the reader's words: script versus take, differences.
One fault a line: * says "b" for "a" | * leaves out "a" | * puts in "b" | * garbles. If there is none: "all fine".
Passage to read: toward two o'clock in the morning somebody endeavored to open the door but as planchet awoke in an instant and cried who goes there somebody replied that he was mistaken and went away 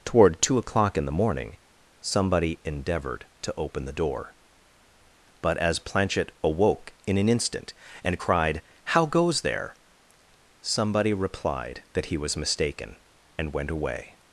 * says "how" for "who"